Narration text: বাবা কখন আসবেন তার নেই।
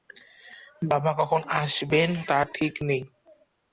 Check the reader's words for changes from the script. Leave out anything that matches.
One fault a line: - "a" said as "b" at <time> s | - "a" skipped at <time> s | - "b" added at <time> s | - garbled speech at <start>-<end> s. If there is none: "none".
- "ঠিক" added at 2.5 s